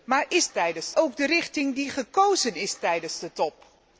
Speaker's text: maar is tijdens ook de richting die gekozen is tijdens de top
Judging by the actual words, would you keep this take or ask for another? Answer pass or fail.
pass